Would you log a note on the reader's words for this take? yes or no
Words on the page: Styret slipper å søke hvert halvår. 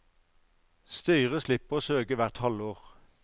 no